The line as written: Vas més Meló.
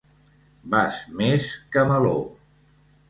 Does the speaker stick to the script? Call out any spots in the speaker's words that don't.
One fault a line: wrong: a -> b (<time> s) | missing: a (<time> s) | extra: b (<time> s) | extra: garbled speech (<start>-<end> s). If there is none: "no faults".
extra: que (1.7 s)